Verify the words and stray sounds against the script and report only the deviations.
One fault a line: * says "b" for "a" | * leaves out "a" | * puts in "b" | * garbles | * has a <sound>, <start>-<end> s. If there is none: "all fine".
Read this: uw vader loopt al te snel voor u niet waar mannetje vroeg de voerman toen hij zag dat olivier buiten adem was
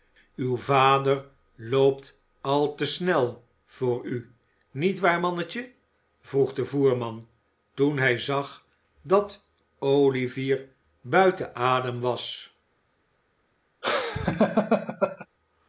* has a laugh, 13.8-15.3 s